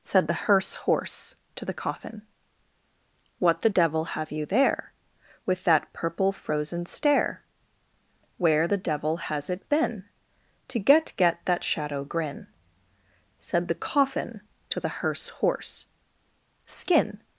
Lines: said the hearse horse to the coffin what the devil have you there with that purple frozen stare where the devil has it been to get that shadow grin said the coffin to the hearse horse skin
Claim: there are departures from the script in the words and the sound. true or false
true